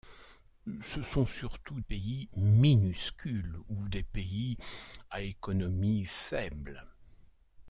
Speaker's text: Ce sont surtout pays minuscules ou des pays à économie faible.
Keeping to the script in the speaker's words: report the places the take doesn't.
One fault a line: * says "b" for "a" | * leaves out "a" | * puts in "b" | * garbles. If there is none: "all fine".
all fine